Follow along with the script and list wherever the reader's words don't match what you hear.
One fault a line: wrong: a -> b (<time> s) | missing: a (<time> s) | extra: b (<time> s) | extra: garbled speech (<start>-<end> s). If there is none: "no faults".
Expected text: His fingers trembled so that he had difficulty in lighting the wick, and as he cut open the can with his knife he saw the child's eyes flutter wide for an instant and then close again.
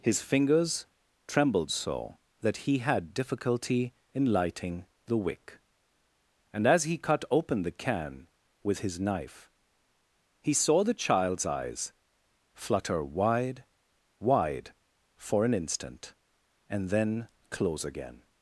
extra: wide (14.2 s)